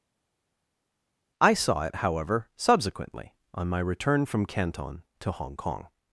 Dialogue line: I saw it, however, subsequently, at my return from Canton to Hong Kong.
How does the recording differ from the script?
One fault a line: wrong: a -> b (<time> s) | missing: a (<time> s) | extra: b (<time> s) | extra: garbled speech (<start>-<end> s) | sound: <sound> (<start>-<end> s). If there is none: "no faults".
wrong: at -> on (3.5 s)